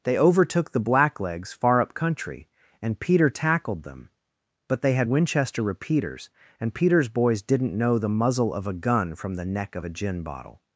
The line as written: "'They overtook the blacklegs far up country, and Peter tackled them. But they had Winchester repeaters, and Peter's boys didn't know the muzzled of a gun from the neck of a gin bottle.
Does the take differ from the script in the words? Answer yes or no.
yes